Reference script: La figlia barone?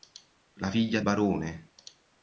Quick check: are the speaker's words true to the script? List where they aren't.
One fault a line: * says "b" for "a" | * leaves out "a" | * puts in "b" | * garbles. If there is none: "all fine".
all fine